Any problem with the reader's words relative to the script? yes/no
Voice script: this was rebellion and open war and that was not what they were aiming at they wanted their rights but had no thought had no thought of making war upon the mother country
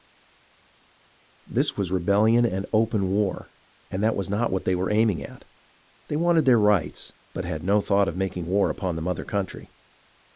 yes